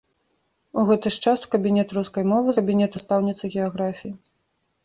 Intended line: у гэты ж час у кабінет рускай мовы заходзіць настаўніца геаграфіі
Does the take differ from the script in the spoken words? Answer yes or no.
yes